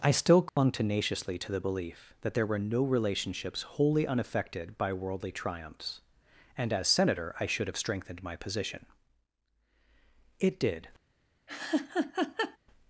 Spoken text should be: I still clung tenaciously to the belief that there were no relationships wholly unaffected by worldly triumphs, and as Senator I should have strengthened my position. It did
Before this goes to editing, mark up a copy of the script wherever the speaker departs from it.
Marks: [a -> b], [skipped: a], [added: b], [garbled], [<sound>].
I still clung [dropout] tenaciously to the belief that there were no relationships wholly unaffected by worldly triumphs, and as Senator I should have strengthened my position. It did [laugh]